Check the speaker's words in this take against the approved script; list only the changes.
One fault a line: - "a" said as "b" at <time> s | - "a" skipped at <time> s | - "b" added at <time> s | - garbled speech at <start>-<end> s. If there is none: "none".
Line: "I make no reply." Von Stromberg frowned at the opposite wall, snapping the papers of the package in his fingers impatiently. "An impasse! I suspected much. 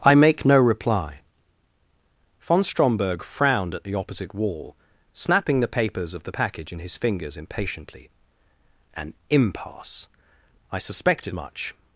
none